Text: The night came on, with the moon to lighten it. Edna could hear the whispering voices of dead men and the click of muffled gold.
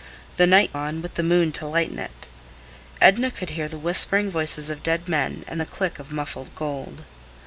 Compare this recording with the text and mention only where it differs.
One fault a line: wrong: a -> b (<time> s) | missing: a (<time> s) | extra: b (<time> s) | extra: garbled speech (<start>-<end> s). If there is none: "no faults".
missing: came (0.7 s)